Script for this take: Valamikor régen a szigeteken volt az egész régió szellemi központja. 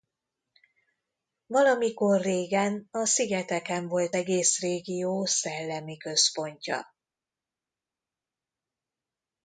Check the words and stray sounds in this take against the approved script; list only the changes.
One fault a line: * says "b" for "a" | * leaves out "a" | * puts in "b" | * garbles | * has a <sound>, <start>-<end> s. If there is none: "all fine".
* leaves out "az"